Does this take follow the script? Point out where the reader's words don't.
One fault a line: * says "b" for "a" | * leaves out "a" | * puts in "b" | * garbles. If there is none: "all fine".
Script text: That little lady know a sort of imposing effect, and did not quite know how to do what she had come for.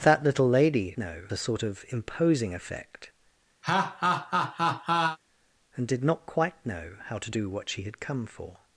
all fine